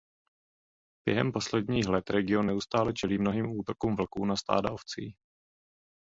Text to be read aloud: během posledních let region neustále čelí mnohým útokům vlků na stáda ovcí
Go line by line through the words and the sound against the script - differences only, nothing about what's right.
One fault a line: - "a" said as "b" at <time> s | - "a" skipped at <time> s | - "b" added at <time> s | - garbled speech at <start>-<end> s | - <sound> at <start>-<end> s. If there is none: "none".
none